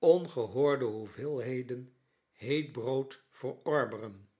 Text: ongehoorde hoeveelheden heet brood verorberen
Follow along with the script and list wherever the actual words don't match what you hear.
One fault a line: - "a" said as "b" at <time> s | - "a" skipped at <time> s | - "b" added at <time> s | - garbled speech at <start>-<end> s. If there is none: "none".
none